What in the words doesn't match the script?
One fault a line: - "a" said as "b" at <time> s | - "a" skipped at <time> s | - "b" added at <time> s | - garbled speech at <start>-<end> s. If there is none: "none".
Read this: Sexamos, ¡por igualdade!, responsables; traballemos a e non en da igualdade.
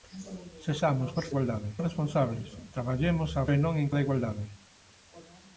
none